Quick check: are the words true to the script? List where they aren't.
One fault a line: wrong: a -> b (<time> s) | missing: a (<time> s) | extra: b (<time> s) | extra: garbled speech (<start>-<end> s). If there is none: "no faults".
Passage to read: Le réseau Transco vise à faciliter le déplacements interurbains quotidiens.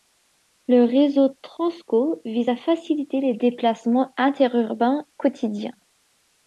wrong: le -> les (3.2 s)